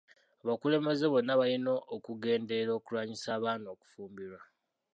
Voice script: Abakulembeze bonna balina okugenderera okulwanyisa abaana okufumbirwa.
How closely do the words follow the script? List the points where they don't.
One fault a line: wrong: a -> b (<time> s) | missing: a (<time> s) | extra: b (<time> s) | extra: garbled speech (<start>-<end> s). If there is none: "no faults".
no faults